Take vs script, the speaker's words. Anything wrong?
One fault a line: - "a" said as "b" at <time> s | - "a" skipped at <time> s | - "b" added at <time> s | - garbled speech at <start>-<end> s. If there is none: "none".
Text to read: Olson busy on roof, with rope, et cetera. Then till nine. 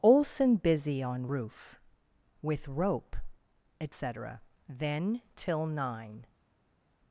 none